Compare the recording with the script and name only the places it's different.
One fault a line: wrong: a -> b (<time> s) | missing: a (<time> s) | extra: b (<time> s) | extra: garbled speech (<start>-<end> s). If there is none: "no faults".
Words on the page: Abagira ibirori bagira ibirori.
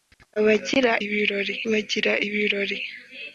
no faults